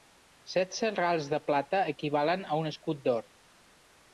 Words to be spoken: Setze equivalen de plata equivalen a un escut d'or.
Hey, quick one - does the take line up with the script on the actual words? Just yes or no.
no